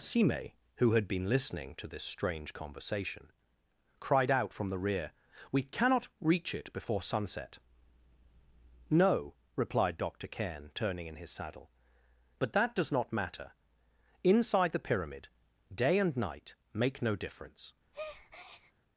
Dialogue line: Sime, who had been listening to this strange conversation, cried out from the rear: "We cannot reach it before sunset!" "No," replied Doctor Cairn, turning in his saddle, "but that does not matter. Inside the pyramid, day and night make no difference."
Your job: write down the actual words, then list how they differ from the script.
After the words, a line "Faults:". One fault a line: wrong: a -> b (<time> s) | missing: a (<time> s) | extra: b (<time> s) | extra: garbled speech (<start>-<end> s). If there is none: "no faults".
Sime, who had been listening to this strange conversation, cried out from the rear: "We cannot reach it before sunset!" "No," replied Doctor Cairn, turning in his saddle, "but that does not matter. Inside the pyramid, day and night make no difference."
Faults:
no faults